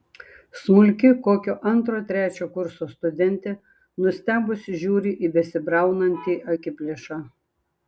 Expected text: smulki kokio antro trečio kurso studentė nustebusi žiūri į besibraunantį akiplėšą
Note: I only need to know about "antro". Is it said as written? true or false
true